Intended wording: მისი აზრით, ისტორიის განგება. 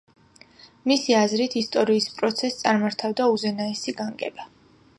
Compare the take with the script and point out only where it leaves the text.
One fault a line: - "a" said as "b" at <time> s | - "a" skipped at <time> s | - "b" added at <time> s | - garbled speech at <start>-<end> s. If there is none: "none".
- "პროცესს წარმართავდა უზენაესი" added at 2.2 s